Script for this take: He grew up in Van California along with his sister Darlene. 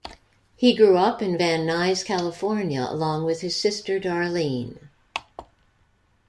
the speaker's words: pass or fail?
fail